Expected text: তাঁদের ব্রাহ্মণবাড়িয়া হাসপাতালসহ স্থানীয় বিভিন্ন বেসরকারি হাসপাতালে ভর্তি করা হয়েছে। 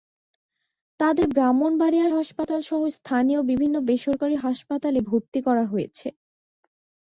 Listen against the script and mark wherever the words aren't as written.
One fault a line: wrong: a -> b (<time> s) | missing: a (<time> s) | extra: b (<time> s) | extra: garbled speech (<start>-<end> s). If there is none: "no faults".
no faults